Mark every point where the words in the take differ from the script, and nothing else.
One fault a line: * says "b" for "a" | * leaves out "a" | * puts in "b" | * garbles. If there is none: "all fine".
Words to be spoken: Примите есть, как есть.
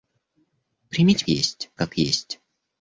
all fine